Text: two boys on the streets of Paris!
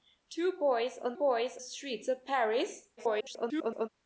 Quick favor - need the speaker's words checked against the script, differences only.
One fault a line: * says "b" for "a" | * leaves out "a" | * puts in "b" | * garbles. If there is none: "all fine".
* says "boys" for "the"
* garbles